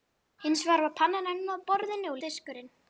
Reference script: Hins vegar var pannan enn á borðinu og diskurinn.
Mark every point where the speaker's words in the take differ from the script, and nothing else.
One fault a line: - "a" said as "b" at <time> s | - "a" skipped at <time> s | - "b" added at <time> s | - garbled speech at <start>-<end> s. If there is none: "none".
none